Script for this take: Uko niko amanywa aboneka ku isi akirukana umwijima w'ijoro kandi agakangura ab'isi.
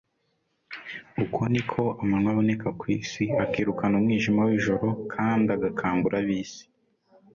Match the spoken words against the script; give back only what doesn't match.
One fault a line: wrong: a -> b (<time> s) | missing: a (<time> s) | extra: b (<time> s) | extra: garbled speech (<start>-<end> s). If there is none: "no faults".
no faults